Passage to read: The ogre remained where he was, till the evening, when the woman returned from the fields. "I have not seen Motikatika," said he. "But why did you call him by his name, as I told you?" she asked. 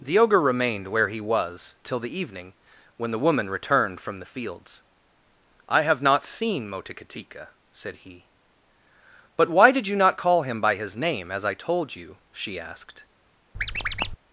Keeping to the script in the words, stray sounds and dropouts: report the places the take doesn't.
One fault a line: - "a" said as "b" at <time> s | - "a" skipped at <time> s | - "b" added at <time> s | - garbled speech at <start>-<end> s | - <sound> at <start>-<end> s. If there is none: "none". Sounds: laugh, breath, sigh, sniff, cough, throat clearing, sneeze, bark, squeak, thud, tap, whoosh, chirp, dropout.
- "not" added at 9.9 s
- squeak at 13.5-14.2 s